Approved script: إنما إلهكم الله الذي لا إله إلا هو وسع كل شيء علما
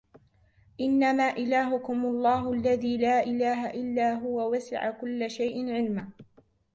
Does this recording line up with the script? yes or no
yes